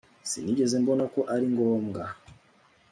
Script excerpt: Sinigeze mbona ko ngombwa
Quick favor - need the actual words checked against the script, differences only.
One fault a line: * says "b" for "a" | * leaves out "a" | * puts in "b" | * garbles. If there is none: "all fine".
* puts in "ari"